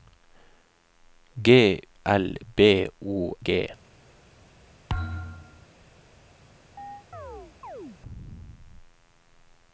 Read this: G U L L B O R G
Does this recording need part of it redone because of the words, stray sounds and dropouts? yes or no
yes